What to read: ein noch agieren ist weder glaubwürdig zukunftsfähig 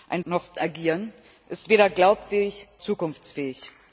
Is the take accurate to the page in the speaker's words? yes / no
yes